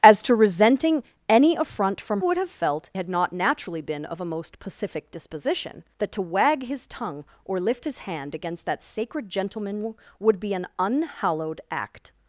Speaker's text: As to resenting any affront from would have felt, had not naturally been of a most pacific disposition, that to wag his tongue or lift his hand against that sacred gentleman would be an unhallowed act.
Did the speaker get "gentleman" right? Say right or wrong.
right